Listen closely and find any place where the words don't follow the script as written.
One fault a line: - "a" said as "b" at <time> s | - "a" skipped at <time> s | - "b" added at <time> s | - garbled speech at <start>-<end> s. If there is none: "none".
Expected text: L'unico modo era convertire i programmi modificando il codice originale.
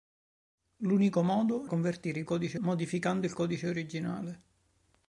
- "era" skipped at 1.7 s
- "programmi" said as "codice" at 2.2 s